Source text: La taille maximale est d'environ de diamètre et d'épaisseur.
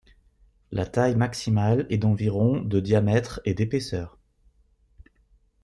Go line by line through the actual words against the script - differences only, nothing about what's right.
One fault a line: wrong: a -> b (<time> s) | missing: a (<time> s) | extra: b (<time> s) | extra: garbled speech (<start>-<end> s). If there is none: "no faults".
no faults